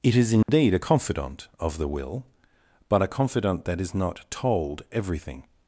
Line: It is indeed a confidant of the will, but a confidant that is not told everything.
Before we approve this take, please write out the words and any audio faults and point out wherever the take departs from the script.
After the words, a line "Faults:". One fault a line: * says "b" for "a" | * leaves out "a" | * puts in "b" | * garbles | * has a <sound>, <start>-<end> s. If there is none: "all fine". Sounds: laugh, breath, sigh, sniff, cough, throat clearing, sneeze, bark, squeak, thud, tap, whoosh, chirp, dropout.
It is indeed a confidant of the will, but a confidant that is not told everything.
Faults:
* has a dropout, 0.4-0.5 s